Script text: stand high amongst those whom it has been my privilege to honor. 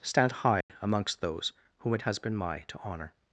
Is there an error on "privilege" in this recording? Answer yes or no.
yes